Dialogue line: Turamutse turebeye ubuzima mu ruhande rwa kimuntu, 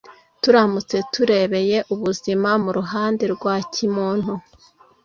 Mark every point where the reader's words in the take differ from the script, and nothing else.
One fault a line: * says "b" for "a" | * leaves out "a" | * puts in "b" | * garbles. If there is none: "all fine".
all fine